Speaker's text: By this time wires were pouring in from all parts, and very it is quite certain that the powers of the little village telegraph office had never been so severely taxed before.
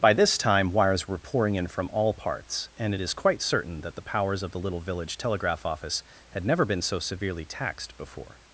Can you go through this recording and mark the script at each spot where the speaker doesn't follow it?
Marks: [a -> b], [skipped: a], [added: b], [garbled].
By this time wires were pouring in from all parts, and [skipped: very] it is quite certain that the powers of the little village telegraph office had never been so severely taxed before.